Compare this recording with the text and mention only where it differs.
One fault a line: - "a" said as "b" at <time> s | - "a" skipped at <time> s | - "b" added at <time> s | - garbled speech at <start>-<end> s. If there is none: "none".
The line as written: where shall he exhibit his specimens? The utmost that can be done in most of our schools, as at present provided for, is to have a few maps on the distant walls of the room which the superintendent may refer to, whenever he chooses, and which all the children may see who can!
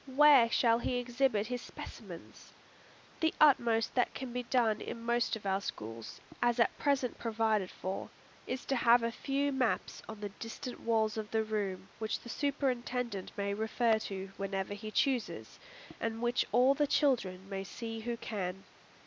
none